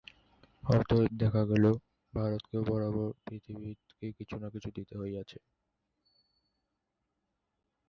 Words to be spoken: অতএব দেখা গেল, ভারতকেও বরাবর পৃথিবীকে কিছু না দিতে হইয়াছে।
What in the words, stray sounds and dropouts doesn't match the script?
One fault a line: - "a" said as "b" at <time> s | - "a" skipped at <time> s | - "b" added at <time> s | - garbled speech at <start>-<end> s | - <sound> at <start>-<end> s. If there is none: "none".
- "কিছু" added at 4.5 s